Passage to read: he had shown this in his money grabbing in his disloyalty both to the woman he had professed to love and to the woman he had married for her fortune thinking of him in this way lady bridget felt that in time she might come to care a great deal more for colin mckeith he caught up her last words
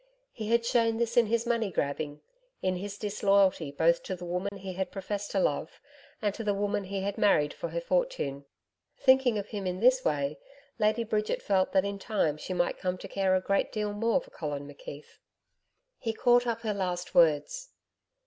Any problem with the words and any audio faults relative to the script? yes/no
yes